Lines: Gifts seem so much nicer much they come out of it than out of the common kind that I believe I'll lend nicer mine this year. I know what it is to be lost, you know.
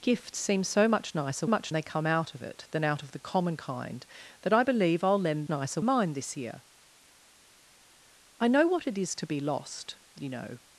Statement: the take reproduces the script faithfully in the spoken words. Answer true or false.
true